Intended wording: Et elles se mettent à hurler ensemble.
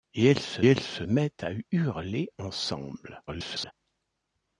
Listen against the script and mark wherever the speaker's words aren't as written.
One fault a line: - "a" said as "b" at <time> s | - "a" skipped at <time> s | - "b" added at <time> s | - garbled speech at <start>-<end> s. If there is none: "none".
- "elles se" added at 0.7 s
- garbled speech at 3.3-3.7 s